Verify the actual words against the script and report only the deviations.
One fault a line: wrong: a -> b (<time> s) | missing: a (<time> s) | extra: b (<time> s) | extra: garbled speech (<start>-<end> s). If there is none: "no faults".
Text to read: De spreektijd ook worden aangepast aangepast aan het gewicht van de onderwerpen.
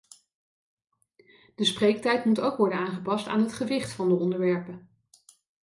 extra: moet (2.2 s)
missing: aangepast (3.3 s)